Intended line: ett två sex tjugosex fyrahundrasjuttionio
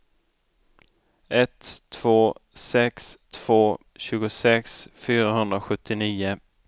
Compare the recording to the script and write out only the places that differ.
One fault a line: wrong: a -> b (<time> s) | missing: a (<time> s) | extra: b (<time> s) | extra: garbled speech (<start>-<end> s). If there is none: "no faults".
extra: två (3.3 s)